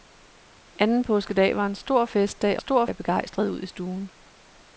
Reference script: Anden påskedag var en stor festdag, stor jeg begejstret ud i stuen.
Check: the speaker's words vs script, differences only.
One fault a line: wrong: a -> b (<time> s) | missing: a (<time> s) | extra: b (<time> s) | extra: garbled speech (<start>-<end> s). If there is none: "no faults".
no faults